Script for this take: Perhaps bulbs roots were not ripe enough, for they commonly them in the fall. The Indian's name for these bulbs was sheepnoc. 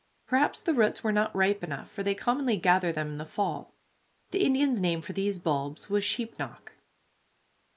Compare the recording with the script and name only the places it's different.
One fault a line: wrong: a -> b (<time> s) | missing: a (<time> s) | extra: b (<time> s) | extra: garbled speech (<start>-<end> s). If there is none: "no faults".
wrong: bulbs -> the (0.6 s)
extra: gather (2.6 s)